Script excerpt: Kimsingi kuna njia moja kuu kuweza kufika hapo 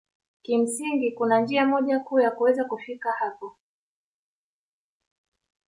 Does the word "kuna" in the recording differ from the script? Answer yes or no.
no